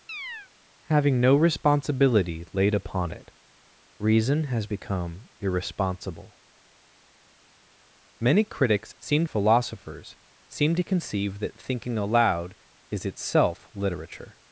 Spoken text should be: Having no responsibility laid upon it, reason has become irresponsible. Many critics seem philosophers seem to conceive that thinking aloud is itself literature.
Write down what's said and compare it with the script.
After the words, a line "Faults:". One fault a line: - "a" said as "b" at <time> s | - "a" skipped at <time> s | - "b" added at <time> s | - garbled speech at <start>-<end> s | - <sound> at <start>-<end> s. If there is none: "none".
Having no responsibility laid upon it, reason has become irresponsible. Many critics seem philosophers seem to conceive that thinking aloud is itself literature.
Faults:
- chirp at 0.1-0.5 s